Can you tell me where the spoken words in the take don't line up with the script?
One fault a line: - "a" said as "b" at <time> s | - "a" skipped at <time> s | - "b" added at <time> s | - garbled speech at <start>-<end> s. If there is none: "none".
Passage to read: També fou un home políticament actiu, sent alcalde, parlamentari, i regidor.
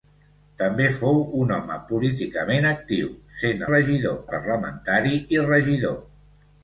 - "alcalde" said as "regidor" at 3.7 s